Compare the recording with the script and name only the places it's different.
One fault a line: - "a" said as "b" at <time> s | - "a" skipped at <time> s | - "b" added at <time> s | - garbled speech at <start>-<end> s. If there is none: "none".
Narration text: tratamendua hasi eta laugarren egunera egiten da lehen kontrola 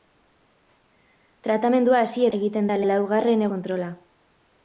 - "eta laugarren egunera" skipped at 2.2 s
- "lehen" said as "laugarren" at 2.9 s